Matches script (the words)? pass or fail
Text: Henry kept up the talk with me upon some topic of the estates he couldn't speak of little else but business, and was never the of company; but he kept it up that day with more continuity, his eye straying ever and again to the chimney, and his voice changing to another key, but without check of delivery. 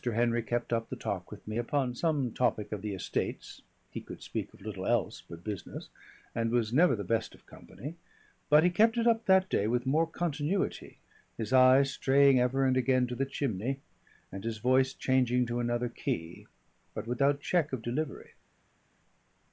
fail